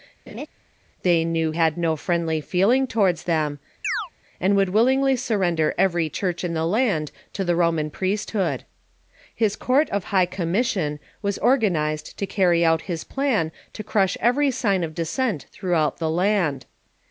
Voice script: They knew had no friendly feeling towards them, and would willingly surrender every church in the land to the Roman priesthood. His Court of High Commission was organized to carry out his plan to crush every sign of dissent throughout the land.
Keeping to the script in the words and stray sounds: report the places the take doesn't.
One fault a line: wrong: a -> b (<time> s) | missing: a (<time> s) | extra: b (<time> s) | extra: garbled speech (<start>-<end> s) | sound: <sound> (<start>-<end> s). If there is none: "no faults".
sound: laugh (0.3-0.5 s)
sound: chirp (3.8-4.1 s)